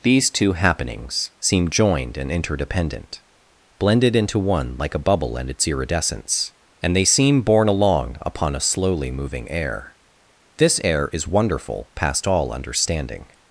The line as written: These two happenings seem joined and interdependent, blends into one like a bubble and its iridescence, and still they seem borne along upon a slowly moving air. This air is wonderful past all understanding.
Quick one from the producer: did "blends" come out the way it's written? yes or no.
no